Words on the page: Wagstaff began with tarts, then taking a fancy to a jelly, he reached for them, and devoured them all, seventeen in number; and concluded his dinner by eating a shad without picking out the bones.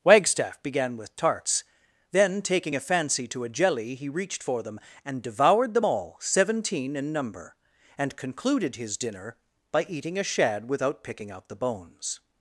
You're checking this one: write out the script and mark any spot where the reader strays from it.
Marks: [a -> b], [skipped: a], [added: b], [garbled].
Wagstaff began with tarts, then taking a fancy to a jelly, he reached for them, and devoured them all, seventeen in number; and concluded his dinner by eating a shad without picking out the bones.